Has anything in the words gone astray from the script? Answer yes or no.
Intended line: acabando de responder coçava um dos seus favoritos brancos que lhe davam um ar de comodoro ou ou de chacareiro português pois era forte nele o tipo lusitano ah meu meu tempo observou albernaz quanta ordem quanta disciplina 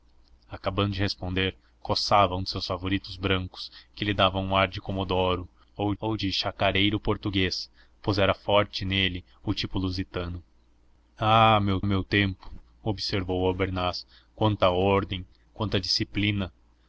no